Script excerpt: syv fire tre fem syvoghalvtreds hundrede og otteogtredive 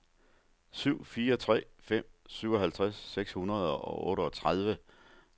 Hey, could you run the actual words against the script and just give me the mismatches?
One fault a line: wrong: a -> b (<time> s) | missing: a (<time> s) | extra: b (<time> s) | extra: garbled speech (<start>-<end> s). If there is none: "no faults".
extra: seks (3.0 s)